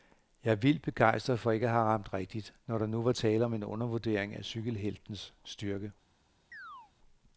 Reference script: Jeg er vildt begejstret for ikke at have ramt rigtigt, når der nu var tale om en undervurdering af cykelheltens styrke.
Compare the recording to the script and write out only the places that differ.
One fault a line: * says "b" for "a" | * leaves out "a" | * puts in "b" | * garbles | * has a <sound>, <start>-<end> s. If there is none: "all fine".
* has a chirp, 6.5-6.9 s